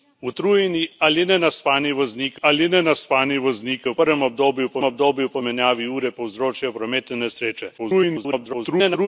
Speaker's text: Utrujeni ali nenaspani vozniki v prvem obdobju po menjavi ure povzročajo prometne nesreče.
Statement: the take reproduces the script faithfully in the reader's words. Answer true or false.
false